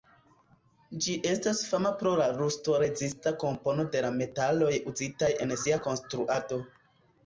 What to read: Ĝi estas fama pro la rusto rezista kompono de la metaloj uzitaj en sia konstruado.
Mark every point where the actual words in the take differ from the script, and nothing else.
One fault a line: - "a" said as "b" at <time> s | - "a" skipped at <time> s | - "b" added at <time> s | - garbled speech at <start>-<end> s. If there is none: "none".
none